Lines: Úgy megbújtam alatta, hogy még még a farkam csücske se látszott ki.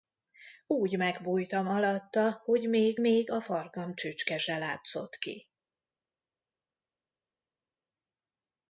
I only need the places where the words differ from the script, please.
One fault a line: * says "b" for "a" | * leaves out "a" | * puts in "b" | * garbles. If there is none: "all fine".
all fine